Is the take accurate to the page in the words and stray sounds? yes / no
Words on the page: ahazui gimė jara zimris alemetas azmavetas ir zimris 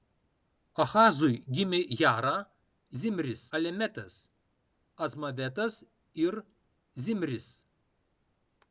yes